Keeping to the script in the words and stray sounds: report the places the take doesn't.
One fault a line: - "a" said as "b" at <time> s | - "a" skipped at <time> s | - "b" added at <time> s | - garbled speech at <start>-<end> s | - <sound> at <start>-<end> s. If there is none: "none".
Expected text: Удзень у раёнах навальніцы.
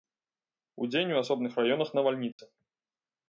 - "асобных" added at 1.2 s
- dropout at 2.3-2.4 s